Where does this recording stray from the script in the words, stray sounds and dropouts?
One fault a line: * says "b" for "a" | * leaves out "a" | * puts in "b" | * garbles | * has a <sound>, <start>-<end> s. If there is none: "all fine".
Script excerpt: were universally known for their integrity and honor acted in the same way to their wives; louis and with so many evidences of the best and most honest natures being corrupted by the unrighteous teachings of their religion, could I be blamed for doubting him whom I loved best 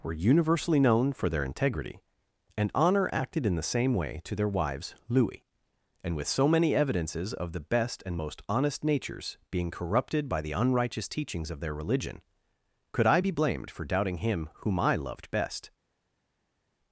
all fine